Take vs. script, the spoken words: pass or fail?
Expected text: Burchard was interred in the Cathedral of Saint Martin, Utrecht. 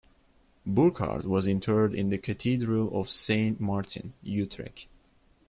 pass